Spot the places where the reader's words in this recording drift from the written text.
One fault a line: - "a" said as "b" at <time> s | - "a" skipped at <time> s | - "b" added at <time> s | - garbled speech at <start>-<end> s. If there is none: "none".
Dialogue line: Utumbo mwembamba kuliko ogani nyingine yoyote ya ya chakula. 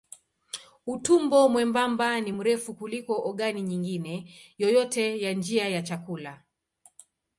- "ni mrefu" added at 2.2 s
- "njia" added at 5.3 s